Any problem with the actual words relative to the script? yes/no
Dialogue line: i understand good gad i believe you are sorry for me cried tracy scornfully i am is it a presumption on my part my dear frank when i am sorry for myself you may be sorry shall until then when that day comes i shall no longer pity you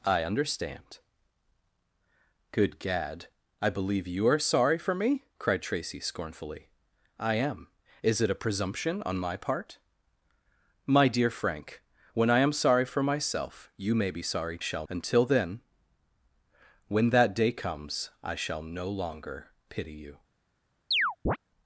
no